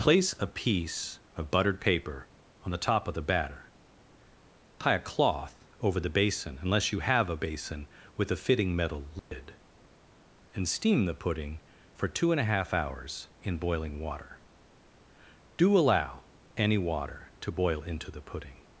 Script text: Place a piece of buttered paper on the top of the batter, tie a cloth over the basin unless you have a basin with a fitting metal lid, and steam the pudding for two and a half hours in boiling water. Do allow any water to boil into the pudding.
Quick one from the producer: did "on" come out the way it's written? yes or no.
yes